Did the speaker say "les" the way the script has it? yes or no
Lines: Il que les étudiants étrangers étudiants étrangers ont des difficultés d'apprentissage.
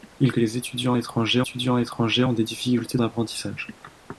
yes